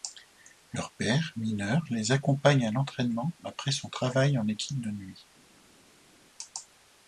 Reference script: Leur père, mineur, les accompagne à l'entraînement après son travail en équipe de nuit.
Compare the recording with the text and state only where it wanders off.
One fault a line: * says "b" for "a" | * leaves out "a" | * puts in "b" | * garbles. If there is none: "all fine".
all fine